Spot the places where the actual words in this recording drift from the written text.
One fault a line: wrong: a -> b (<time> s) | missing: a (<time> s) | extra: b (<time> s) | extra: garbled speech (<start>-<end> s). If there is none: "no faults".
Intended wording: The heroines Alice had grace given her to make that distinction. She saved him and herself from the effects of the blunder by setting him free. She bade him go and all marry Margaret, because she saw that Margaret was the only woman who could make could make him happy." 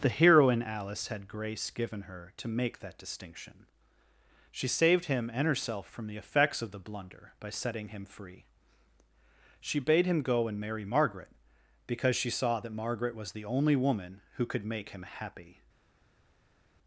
wrong: heroines -> heroine (0.1 s)
missing: all (10.6 s)
missing: could make (14.9 s)